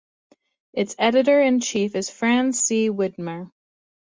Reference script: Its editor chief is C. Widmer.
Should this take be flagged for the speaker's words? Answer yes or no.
yes